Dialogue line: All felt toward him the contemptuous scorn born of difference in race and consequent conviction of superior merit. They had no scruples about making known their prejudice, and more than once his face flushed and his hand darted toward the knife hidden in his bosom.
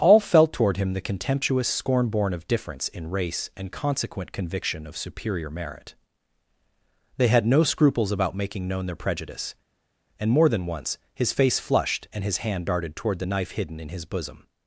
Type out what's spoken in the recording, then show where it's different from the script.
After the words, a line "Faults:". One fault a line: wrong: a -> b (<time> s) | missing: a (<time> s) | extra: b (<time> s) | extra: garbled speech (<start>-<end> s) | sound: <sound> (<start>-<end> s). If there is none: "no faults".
All felt toward him the contemptuous scorn born of difference in race and consequent conviction of superior merit. They had no scruples about making known their prejudice, and more than once his face flushed and his hand darted toward the knife hidden in his bosom.
Faults:
no faults